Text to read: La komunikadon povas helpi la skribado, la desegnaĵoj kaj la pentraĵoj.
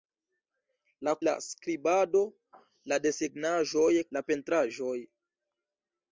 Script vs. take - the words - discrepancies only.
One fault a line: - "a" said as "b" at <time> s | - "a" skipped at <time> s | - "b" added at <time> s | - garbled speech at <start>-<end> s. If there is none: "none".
- "komunikadon povas helpi" skipped at 1.1 s
- "kaj" skipped at 3.9 s